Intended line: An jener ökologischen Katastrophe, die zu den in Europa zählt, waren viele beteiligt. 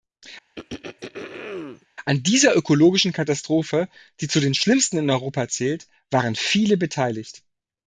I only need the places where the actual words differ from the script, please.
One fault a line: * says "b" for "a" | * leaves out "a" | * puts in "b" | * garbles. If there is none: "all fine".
* says "dieser" for "jener"
* puts in "schlimmsten"